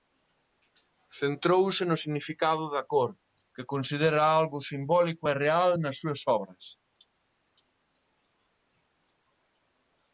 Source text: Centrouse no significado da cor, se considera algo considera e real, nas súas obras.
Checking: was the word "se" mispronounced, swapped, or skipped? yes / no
yes